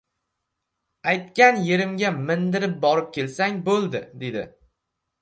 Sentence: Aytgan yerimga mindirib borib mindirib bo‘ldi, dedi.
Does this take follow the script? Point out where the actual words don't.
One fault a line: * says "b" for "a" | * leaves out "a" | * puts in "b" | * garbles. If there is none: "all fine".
* says "kelsang" for "mindirib"